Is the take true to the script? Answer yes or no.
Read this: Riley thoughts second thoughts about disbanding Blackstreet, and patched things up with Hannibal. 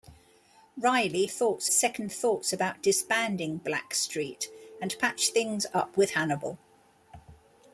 yes